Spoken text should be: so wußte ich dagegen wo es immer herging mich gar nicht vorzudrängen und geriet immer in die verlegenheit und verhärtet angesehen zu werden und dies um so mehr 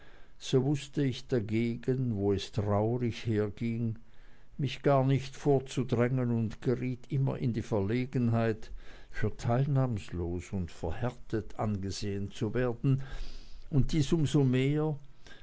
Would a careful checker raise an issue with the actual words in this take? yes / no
yes